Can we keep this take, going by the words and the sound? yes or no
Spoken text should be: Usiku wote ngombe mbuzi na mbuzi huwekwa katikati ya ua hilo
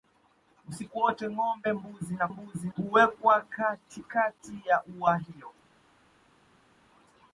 yes